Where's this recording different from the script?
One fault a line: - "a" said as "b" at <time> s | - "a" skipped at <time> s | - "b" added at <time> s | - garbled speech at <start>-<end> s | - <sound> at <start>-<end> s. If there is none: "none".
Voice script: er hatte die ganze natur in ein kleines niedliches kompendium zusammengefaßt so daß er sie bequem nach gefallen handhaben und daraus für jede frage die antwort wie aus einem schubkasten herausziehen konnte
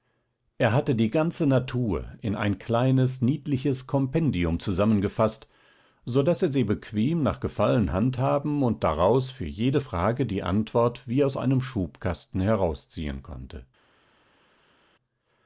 none